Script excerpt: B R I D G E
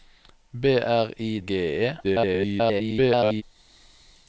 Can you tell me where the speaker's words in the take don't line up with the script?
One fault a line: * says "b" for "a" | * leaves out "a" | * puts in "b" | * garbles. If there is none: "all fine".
* leaves out "D"
* garbles